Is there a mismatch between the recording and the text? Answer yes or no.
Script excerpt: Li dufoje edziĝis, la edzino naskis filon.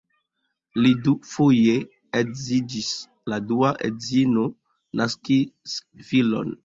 yes